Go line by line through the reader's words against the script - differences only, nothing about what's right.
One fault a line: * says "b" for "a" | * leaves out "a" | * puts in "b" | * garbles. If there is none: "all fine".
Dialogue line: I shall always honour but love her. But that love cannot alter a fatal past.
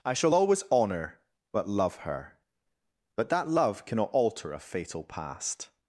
all fine